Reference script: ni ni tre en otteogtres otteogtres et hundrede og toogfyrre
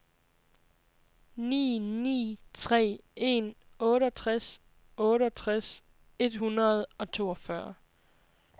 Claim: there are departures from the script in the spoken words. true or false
false